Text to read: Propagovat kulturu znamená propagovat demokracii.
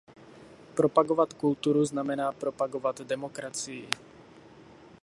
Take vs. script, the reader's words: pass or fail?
pass